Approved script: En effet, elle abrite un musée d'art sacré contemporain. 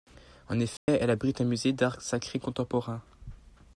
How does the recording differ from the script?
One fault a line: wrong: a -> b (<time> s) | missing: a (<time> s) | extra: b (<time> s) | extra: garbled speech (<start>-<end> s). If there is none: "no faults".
no faults